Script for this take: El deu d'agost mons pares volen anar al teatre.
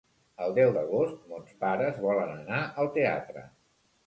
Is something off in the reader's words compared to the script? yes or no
no